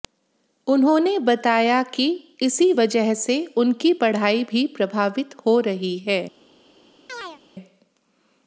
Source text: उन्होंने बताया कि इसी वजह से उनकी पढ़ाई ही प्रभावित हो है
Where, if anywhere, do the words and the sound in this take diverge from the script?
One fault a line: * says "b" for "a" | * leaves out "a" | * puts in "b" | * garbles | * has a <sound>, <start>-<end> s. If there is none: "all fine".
* says "भी" for "ही"
* puts in "रही"
* has a chirp, 7.1-7.4 s